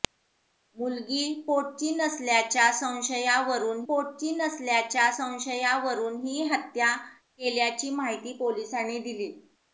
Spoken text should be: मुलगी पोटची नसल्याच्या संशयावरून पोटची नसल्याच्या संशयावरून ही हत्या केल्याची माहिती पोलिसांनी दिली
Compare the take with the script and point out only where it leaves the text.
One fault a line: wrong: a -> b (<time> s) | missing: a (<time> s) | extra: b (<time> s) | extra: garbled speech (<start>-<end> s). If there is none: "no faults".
no faults